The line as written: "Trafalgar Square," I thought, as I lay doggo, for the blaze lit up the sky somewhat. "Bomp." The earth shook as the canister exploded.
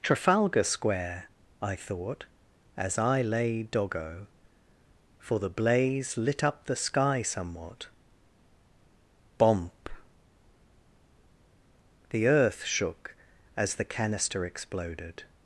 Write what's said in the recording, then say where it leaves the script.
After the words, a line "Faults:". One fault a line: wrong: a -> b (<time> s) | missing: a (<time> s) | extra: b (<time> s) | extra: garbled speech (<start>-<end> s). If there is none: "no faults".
"Trafalgar Square," I thought, as I lay doggo, for the blaze lit up the sky somewhat. "Bomp." The earth shook as the canister exploded.
Faults:
no faults